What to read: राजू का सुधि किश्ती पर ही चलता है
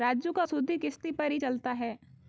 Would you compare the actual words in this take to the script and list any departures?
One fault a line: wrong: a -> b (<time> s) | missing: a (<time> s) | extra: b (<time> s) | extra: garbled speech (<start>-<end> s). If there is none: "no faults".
no faults